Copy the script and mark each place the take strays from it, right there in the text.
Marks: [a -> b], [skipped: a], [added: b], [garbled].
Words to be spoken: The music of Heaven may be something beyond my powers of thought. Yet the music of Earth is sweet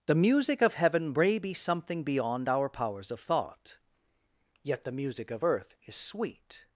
The music of Heaven may be something beyond [my -> our] powers of thought. Yet the music of Earth is sweet